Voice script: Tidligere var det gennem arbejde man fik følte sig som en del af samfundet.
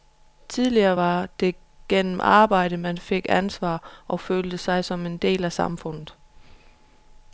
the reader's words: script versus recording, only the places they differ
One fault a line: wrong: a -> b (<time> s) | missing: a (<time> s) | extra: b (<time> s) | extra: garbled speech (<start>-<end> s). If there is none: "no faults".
extra: ansvar og (3.3 s)